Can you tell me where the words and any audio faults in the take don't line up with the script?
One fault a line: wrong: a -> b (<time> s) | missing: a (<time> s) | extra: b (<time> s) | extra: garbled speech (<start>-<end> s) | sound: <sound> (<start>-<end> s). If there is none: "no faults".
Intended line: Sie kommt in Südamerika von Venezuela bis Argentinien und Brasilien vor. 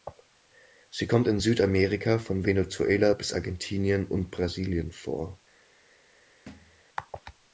sound: thud (6.5-6.8 s)